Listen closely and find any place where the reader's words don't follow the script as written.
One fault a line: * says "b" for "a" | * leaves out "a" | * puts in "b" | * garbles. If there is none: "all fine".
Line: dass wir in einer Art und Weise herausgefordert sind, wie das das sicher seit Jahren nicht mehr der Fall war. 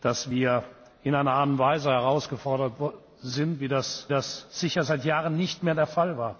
all fine